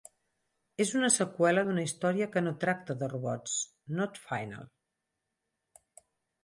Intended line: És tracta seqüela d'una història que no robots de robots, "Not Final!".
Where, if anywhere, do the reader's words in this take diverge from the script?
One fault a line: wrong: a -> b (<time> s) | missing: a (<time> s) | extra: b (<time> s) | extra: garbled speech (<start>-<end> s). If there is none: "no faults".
wrong: tracta -> una (1.0 s)
wrong: robots -> tracta (2.7 s)